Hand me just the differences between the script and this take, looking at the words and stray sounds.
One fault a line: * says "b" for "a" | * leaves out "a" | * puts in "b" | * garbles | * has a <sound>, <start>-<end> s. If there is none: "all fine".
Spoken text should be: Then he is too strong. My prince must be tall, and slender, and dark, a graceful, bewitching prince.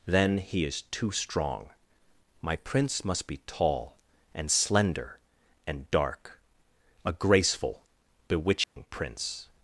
* has a dropout, 8.6-8.8 s